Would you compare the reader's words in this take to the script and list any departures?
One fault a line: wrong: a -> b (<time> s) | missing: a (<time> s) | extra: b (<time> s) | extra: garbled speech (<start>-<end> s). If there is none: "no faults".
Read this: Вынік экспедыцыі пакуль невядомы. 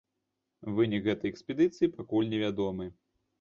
extra: гэтай (1.1 s)